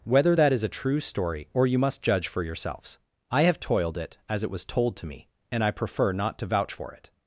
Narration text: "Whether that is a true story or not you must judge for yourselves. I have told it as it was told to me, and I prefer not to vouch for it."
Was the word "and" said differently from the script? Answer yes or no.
no